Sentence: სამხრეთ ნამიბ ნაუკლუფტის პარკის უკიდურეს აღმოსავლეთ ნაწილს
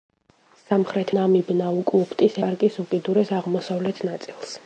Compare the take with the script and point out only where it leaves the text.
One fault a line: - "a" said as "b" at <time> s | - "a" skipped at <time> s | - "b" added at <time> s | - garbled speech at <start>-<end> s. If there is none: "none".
none